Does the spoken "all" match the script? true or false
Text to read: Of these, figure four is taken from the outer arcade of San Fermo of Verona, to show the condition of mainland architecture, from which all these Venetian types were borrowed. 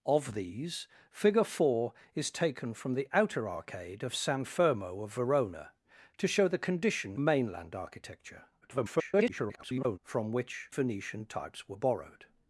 false